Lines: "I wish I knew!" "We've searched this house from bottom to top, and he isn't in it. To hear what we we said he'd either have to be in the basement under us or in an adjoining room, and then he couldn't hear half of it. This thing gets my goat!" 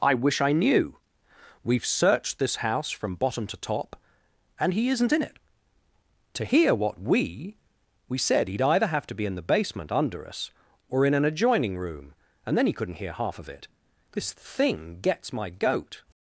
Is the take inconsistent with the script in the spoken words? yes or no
no